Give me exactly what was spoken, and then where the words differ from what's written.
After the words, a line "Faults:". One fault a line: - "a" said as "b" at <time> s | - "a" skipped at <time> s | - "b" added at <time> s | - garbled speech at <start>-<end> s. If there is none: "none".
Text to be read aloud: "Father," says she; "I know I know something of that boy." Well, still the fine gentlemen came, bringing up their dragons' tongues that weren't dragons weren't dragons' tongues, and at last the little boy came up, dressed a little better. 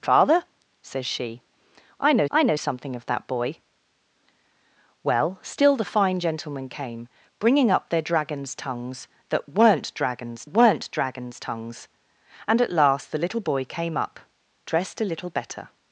"Father," says she; "I know I know something of that boy." Well, still the fine gentlemen came, bringing up their dragons' tongues that weren't dragons weren't dragons' tongues, and at last the little boy came up, dressed a little better.
Faults:
none